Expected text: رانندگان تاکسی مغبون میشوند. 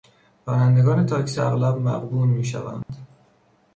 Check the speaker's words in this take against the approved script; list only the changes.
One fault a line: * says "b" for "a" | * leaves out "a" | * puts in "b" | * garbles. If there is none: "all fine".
* puts in "اغلب"